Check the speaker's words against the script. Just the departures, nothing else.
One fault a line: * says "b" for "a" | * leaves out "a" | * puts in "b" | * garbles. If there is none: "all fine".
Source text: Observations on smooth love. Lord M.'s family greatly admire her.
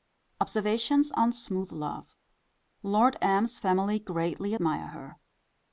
all fine